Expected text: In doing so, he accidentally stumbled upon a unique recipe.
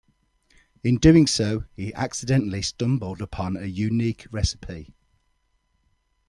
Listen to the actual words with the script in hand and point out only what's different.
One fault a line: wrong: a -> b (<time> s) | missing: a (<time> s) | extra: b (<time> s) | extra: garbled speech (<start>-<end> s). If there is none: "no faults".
no faults